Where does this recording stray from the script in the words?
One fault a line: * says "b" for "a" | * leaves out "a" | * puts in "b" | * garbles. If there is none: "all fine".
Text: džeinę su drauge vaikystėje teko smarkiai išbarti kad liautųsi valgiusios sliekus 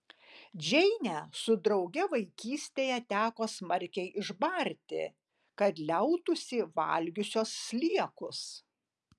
all fine